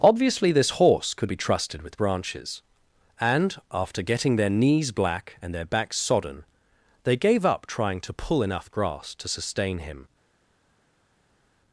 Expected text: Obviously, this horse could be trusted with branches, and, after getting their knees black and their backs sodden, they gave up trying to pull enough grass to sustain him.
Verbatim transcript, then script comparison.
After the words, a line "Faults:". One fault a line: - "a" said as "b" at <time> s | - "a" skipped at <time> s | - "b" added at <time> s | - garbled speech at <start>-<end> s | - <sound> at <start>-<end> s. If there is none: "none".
Obviously, this horse could be trusted with branches, and, after getting their knees black and their backs sodden, they gave up trying to pull enough grass to sustain him.
Faults:
none